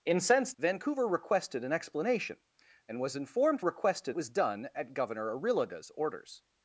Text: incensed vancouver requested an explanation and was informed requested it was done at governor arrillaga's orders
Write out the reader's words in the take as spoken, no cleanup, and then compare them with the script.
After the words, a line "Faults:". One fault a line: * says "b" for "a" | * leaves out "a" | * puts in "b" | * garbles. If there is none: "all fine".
incensed vancouver requested an explanation and was informed requested it was done at governor arrillaga's orders
Faults:
all fine